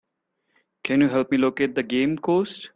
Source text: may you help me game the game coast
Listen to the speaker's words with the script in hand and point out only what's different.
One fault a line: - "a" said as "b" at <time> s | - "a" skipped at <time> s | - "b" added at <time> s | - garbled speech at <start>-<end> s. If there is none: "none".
- "may" said as "can" at 0.8 s
- "game" said as "locate" at 1.4 s